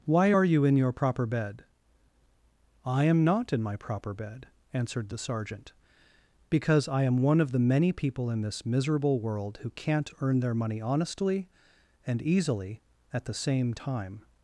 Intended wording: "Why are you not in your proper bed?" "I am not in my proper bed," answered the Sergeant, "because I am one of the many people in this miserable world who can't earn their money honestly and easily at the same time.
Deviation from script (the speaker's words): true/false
true